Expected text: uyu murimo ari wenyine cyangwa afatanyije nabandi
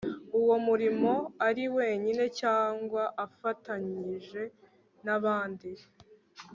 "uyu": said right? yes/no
no